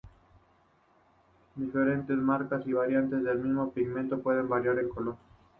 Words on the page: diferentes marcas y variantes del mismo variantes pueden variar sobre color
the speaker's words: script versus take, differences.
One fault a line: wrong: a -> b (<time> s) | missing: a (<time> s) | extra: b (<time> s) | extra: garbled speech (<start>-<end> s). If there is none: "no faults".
wrong: variantes -> pigmento (3.7 s)
wrong: sobre -> en (4.8 s)